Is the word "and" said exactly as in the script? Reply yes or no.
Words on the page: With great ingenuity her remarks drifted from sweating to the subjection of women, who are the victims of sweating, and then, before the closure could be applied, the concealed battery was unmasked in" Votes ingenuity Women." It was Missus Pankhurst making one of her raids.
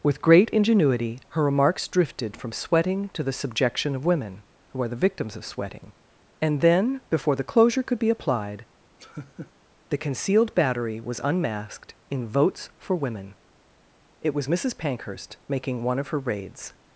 yes